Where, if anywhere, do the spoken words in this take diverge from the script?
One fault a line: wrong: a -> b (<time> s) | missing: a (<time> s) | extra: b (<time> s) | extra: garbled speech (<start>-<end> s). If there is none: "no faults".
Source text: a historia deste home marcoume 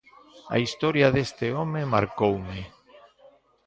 no faults